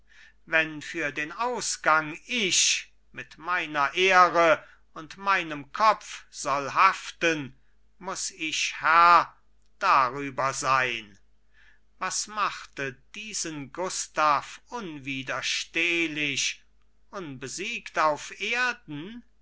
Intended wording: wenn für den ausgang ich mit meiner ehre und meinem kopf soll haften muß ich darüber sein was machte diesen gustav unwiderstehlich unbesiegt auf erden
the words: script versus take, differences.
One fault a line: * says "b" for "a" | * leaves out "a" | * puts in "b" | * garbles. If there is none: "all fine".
* puts in "herr"